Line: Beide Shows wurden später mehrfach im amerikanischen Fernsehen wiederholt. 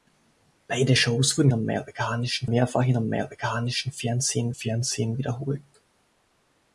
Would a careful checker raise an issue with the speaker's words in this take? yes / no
yes